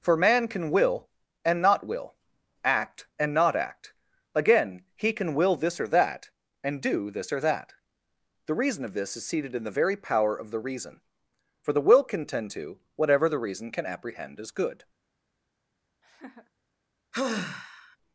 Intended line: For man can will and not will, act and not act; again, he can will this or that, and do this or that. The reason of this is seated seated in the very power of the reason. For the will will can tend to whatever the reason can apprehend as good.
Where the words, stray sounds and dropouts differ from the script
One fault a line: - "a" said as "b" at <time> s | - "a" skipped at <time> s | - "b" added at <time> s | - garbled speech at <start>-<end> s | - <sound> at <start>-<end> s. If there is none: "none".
- "seated" skipped at 9.5 s
- "will" skipped at 12.0 s
- laugh at 16.0-16.5 s
- sigh at 17.1-18.0 s